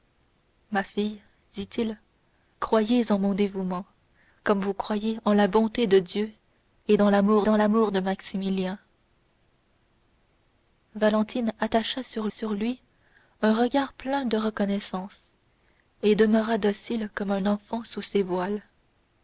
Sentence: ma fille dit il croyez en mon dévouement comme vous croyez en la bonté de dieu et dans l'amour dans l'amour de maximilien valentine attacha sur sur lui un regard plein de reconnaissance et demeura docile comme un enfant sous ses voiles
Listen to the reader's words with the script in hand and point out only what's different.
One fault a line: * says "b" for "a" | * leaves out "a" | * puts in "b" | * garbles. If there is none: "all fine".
all fine